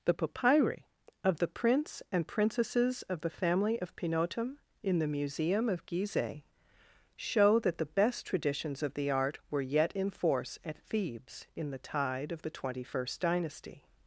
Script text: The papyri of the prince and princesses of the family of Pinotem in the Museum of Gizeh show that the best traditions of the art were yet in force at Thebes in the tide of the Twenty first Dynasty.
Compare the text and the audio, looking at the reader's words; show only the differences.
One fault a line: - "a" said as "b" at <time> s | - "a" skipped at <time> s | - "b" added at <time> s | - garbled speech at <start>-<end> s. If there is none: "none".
none